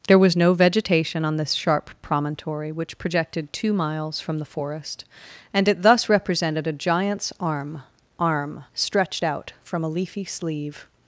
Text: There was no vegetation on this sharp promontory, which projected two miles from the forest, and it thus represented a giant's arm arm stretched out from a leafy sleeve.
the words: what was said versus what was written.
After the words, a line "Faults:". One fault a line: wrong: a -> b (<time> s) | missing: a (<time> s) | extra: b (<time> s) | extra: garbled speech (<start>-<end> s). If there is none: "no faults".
There was no vegetation on this sharp promontory, which projected two miles from the forest, and it thus represented a giant's arm arm stretched out from a leafy sleeve.
Faults:
no faults